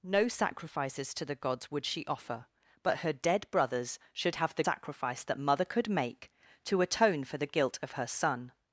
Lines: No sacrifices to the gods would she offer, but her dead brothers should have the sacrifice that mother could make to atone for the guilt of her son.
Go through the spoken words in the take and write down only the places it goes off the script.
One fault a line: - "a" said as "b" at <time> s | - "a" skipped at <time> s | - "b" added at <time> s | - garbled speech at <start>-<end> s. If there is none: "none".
none